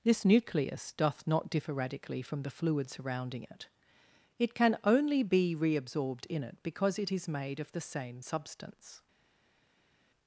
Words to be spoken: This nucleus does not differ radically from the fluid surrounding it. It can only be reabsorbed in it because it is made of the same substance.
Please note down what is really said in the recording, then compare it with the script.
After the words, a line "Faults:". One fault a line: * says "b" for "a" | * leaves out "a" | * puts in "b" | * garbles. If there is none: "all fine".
This nucleus doth not differ radically from the fluid surrounding it. It can only be reabsorbed in it because it is made of the same substance.
Faults:
* says "doth" for "does"